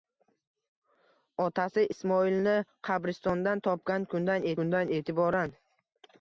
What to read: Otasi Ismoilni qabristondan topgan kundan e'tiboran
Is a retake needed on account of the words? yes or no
yes